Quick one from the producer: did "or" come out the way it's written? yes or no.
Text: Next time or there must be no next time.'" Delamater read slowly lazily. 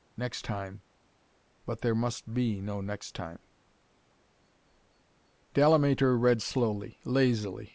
no